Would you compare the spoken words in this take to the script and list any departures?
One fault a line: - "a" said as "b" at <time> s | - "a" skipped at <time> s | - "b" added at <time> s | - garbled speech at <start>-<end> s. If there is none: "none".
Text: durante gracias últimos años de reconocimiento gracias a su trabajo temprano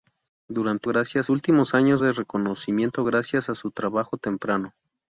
none